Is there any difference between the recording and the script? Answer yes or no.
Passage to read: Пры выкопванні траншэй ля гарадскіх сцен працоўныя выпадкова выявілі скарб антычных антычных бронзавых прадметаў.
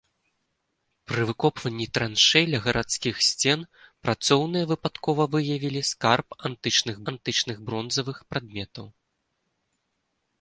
no